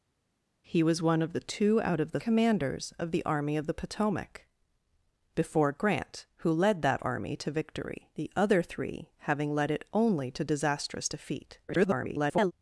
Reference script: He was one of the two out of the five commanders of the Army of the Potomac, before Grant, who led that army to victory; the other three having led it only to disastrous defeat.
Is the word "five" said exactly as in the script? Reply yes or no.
no